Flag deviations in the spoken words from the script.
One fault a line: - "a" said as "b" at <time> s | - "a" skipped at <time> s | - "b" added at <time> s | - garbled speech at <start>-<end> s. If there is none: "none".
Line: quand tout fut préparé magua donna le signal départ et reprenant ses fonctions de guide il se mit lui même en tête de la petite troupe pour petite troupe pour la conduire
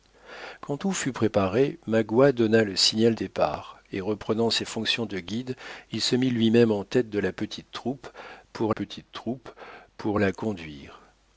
none